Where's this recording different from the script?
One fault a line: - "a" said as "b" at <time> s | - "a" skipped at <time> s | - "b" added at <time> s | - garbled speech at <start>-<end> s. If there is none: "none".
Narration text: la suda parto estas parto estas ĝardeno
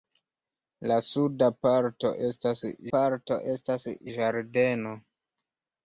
none